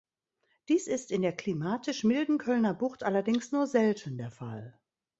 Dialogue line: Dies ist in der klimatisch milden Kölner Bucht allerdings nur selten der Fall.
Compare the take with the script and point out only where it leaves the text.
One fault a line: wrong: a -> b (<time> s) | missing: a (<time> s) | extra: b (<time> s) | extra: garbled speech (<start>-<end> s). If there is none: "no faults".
no faults